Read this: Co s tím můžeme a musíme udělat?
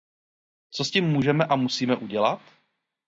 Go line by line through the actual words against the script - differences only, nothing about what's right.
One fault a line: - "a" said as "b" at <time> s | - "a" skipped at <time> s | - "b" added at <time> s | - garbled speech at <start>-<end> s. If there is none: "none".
none